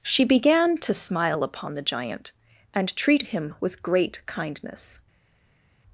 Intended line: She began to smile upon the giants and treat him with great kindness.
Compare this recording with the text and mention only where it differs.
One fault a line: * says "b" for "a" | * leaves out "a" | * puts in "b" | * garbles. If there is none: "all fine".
* says "giant" for "giants"